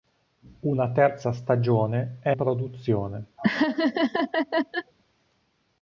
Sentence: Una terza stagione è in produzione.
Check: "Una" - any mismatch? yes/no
no